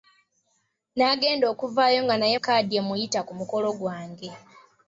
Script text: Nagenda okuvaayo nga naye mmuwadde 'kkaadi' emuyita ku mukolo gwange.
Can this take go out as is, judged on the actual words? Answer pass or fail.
fail